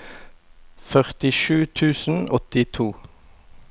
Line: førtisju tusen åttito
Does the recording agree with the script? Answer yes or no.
yes